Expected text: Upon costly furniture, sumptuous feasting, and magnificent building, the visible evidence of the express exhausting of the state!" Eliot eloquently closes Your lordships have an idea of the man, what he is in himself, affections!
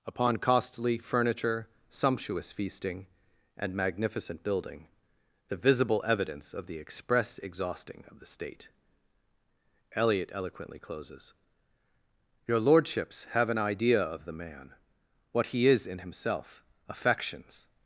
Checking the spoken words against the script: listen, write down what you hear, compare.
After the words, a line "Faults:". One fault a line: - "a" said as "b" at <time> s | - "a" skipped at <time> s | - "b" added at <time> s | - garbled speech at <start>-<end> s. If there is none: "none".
Upon costly furniture, sumptuous feasting, and magnificent building, the visible evidence of the express exhausting of the state!" Eliot eloquently closes Your lordships have an idea of the man, what he is in himself, affections!
Faults:
none